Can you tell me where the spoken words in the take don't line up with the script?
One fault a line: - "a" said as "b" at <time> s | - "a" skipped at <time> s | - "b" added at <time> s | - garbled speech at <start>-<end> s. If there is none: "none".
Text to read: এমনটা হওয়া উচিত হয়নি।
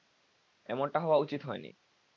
none